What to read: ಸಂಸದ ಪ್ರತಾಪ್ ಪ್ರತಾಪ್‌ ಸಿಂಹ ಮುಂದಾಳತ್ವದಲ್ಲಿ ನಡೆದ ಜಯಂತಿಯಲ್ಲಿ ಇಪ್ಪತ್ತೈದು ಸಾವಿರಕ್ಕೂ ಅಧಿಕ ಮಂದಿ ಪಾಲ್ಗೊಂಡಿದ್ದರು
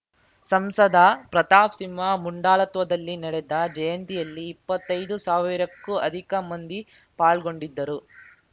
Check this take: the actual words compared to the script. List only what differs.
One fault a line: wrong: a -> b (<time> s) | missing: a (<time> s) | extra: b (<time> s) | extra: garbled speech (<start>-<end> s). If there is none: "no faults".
missing: ಪ್ರತಾಪ್ (1.8 s)